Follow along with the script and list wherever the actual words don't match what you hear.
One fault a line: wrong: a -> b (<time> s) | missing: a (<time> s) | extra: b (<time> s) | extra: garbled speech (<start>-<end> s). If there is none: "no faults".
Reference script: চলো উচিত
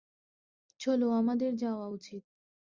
extra: আমাদের যাওয়া (1.1 s)